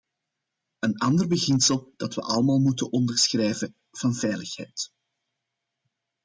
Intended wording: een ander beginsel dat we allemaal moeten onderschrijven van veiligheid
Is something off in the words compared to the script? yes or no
no